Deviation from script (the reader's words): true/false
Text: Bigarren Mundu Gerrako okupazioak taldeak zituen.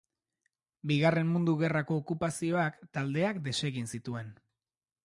true